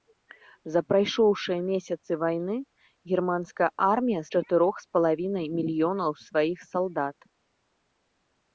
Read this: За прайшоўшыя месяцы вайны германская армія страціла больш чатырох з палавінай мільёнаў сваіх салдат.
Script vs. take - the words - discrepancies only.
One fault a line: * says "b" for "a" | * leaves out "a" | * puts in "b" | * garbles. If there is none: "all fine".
* leaves out "страціла больш"